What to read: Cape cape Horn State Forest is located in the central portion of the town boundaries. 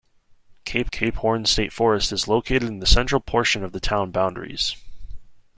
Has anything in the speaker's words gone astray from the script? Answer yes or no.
no